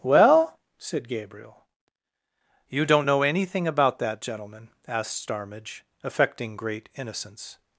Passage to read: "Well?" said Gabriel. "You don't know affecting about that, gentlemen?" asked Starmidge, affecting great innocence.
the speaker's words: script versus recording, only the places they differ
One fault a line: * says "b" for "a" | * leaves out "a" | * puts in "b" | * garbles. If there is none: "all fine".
* says "anything" for "affecting"